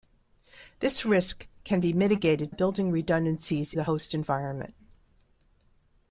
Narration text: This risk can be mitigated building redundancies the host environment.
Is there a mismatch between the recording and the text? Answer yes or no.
no